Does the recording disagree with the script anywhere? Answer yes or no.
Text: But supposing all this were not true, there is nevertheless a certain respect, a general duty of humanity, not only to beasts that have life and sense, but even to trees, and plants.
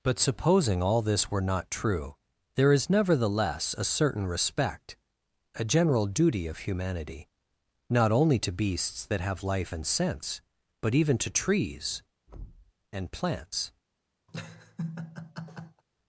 no